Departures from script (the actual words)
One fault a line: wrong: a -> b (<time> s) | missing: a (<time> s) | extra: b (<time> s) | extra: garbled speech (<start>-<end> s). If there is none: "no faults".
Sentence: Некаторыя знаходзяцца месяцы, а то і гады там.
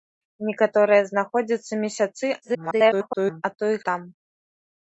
extra: garbled speech (2.4-3.4 s)
missing: гады (3.8 s)